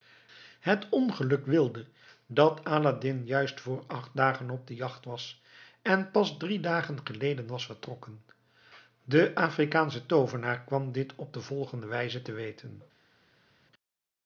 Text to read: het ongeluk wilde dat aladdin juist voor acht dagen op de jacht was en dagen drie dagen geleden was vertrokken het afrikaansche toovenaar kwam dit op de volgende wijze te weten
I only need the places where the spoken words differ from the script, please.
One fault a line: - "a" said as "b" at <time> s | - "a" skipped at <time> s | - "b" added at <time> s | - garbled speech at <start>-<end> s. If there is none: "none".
- "dagen" said as "pas" at 6.1 s
- "het" said as "de" at 9.0 s